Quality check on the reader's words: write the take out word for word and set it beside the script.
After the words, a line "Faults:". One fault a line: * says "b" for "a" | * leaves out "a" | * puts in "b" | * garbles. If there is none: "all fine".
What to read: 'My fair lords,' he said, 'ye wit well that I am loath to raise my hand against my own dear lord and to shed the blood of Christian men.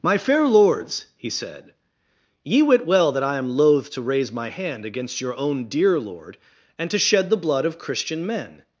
'My fair lords,' he said, 'ye wit well that I am loath to raise my hand against your own dear lord and to shed the blood of Christian men.
Faults:
* says "your" for "my"